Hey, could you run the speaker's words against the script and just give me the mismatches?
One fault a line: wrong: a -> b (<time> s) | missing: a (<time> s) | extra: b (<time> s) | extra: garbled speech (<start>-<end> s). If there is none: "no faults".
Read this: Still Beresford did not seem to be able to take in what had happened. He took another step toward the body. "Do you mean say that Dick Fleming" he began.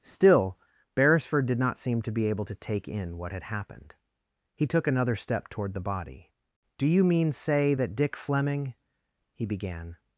no faults